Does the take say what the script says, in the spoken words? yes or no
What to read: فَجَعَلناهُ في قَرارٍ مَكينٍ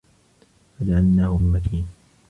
no